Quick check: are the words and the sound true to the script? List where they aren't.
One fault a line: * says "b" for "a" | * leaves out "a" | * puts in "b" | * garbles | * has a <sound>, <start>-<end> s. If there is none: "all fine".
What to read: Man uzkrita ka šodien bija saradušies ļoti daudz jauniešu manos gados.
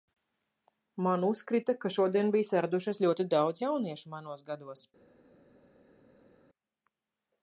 all fine